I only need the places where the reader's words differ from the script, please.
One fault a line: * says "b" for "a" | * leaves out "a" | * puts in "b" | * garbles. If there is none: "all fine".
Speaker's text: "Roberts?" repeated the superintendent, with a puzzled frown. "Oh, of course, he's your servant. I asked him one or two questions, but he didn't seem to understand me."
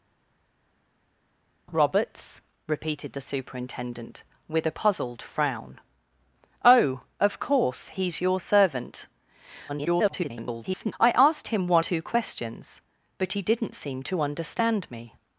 * garbles
* leaves out "or"